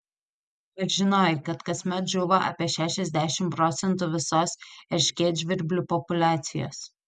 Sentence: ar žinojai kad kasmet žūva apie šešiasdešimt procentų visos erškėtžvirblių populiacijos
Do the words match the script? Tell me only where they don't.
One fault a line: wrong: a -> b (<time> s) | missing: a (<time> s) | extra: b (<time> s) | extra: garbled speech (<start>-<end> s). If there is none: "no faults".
no faults